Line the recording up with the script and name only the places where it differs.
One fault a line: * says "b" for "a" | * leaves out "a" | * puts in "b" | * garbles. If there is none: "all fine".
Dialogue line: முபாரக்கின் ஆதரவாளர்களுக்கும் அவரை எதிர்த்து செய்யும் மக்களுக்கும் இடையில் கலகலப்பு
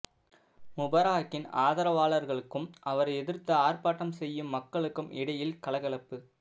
* puts in "ஆர்ப்பாட்டம்"